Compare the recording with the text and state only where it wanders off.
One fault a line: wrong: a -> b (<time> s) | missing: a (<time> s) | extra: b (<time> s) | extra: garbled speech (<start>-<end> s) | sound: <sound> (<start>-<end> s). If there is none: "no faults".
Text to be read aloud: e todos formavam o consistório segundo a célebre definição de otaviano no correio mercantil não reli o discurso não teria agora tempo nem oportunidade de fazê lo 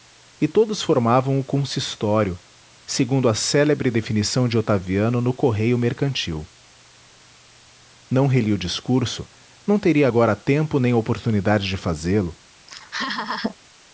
sound: laugh (12.7-13.6 s)